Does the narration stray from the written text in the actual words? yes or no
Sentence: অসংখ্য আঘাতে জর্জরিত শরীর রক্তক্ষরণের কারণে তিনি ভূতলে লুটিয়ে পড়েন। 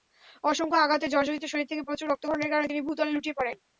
yes